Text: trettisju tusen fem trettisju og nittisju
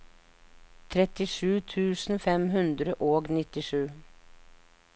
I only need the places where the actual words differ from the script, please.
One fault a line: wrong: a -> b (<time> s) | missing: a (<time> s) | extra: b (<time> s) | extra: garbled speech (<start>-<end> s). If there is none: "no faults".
wrong: trettisju -> hundre (2.6 s)